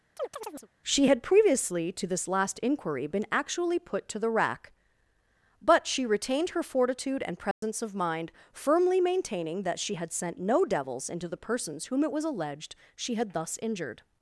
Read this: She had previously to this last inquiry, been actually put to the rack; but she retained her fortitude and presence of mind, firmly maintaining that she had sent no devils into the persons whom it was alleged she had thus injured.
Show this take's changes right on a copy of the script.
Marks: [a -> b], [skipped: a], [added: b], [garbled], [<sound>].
[chirp] She had previously to this last inquiry, been actually put to the rack; but she retained her fortitude and presence [dropout] of mind, firmly maintaining that she had sent no devils into the persons whom it was alleged she had thus injured.